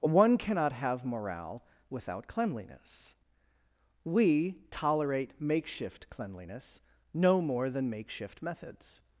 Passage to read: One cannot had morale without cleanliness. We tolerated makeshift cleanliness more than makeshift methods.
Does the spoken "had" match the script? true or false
false